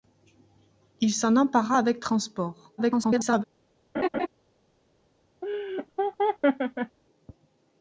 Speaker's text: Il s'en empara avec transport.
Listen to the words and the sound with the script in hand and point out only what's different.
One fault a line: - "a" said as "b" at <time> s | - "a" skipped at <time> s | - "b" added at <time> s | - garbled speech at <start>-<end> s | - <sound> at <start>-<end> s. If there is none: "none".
- garbled speech at 2.8-3.4 s
- laugh at 3.9-4.3 s
- laugh at 5.4-7.0 s